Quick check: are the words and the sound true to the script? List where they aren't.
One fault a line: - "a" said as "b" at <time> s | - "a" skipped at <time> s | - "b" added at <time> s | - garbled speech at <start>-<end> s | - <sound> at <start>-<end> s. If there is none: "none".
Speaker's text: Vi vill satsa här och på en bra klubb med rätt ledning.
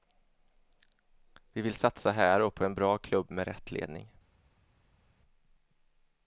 none